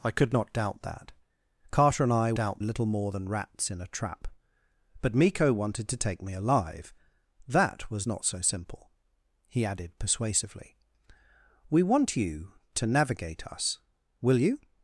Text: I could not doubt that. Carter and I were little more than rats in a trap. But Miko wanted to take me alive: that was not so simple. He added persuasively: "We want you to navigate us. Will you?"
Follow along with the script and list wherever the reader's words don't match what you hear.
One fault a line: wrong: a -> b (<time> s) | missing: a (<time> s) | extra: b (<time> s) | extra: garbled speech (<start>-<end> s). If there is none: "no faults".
wrong: were -> doubt (2.3 s)